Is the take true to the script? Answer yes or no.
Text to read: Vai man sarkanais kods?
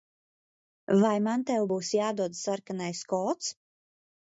no